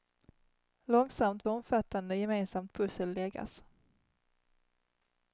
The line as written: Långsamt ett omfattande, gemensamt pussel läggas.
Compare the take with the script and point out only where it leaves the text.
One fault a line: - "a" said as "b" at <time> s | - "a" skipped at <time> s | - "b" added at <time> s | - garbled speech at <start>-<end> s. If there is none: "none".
none